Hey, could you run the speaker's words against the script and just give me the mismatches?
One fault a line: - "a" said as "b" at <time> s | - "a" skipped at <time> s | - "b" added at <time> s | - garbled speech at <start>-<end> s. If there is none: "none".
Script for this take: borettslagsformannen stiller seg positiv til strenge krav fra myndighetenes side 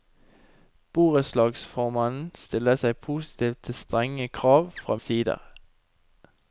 - "myndighetenes" skipped at 5.0 s